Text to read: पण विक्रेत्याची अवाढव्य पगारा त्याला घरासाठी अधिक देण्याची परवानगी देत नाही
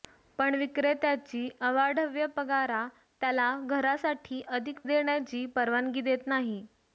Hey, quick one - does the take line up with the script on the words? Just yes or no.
yes